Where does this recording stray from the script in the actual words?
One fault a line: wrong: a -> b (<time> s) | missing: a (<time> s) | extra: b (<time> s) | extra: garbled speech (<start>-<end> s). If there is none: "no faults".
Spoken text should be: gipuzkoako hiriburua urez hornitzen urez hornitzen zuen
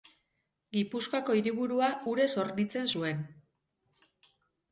missing: urez hornitzen (2.9 s)